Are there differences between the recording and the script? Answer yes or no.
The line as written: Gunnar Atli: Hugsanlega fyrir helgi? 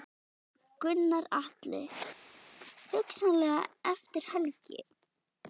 yes